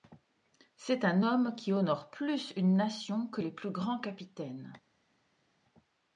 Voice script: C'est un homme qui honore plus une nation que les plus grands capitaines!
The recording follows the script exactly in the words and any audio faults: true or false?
true